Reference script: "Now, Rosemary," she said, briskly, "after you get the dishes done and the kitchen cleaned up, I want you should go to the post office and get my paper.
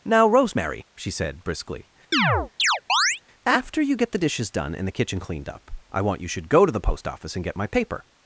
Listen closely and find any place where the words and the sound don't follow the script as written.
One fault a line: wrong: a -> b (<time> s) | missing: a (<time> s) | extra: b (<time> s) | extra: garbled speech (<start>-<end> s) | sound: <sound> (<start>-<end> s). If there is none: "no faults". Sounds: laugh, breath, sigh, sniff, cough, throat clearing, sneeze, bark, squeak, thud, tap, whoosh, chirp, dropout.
sound: chirp (2.1-3.2 s)